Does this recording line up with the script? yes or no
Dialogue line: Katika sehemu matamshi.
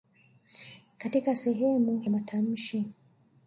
yes